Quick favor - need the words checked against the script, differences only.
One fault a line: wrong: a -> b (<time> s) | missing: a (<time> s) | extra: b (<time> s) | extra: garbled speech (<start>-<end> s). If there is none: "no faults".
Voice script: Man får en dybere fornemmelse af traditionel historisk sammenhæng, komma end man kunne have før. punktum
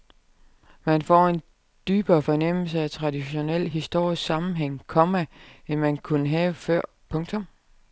no faults